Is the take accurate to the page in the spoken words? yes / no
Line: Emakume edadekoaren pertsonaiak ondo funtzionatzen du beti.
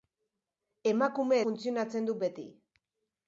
no